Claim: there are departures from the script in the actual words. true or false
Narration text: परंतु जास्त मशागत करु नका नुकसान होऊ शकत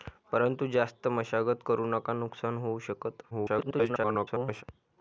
true